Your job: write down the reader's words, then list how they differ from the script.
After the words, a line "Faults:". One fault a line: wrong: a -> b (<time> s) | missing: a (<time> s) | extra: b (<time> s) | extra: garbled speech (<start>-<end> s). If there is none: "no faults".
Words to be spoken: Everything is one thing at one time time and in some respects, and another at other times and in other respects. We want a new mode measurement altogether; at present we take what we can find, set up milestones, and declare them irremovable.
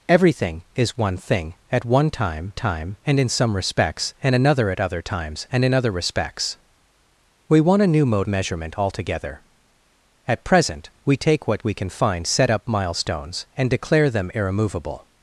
Everything is one thing at one time time and in some respects, and another at other times and in other respects. We want a new mode measurement altogether; at present we take what we can find, set up milestones, and declare them irremovable.
Faults:
no faults